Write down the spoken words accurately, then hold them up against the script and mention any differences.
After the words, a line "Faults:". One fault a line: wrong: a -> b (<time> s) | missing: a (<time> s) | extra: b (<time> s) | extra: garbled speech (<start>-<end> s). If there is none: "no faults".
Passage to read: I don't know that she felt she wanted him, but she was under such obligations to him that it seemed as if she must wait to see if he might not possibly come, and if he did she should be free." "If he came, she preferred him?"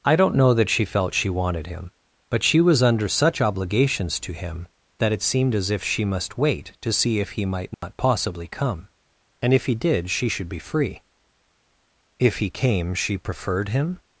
I don't know that she felt she wanted him, but she was under such obligations to him that it seemed as if she must wait to see if he might not possibly come, and if he did she should be free." "If he came, she preferred him?"
Faults:
no faults